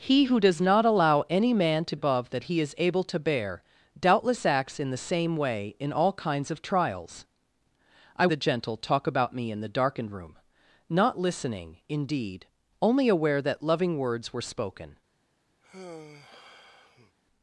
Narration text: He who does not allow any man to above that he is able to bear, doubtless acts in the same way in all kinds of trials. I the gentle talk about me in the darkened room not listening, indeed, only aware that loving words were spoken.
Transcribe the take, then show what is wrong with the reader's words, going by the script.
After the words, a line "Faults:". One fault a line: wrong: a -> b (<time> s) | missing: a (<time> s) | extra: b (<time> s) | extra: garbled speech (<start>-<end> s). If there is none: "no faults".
He who does not allow any man to above that he is able to bear, doubtless acts in the same way in all kinds of trials. I the gentle talk about me in the darkened room not listening, indeed, only aware that loving words were spoken.
Faults:
no faults